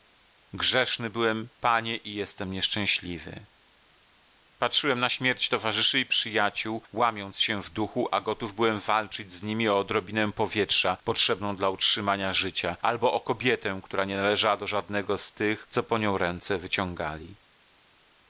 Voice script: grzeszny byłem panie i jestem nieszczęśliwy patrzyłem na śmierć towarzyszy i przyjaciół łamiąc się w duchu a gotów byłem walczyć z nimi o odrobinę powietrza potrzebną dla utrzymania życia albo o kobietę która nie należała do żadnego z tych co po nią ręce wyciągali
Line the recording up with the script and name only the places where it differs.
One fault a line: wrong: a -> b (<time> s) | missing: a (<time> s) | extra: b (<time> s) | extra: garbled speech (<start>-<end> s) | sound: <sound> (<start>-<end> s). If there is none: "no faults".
no faults